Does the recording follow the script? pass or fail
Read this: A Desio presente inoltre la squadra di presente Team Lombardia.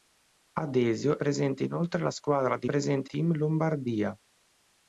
pass